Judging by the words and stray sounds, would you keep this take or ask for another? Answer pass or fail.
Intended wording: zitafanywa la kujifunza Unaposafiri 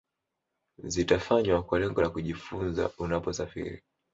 fail